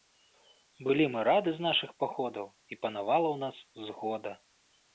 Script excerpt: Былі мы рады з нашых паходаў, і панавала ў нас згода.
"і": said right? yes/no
yes